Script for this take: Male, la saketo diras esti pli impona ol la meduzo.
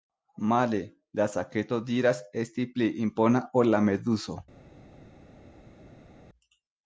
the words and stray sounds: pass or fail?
pass